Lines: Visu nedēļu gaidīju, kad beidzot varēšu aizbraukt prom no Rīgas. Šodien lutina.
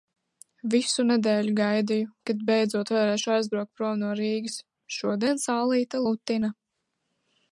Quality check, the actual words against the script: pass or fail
fail